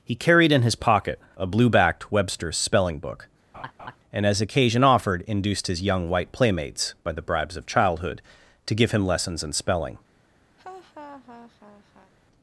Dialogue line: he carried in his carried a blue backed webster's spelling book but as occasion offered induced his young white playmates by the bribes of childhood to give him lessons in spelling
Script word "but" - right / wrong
wrong